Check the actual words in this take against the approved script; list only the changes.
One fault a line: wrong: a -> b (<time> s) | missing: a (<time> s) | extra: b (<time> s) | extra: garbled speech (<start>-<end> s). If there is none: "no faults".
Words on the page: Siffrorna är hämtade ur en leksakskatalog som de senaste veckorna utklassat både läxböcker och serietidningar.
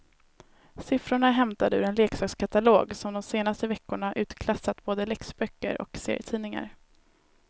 no faults